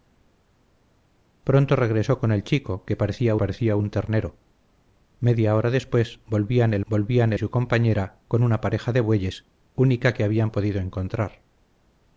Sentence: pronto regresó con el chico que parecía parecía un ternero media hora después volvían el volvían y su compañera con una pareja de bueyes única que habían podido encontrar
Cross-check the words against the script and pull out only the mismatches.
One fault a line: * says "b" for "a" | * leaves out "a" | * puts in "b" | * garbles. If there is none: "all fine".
all fine